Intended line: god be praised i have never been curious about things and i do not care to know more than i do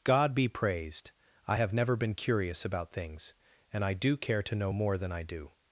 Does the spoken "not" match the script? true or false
false